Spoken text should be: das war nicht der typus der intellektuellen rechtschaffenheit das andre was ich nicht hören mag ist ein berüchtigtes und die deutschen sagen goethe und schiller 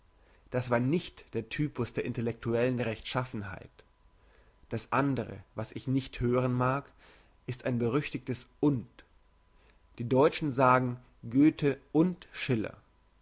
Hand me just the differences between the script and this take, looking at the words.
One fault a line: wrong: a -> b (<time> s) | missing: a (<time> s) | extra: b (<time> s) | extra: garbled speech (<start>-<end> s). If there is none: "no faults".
no faults